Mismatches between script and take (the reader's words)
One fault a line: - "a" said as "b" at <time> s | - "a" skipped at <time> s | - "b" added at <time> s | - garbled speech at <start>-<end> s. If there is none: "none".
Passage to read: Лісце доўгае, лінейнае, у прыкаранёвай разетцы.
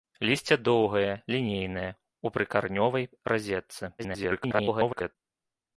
- garbled speech at 4.0-5.2 s